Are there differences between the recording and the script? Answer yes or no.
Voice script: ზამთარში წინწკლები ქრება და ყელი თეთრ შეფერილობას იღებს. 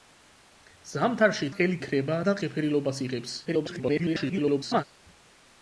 yes